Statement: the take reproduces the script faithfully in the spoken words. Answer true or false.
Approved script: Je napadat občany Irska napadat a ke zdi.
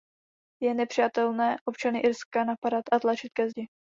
false